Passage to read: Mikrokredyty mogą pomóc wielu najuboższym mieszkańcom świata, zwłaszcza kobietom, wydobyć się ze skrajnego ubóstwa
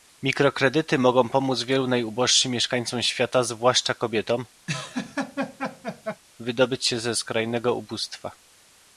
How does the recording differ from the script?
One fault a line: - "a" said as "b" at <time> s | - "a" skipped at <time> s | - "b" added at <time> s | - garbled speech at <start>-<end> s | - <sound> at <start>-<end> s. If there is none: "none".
- laugh at 4.7-6.2 s